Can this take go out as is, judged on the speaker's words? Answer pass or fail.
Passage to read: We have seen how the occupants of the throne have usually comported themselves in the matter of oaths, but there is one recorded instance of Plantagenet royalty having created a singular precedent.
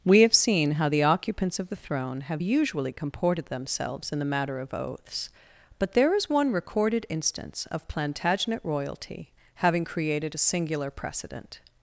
pass